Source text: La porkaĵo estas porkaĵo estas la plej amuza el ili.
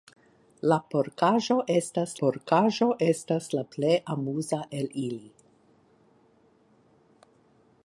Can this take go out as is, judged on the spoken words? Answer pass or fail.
pass